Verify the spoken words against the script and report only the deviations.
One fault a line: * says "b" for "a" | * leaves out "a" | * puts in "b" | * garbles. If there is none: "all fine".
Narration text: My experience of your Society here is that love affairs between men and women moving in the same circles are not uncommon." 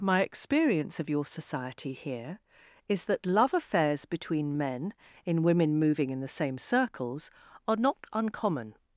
* says "in" for "and"